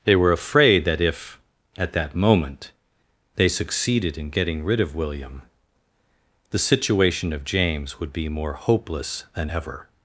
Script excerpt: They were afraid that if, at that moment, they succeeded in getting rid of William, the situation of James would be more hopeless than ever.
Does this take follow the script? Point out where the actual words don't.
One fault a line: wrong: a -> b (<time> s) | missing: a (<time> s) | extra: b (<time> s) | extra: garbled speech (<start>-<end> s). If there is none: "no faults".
no faults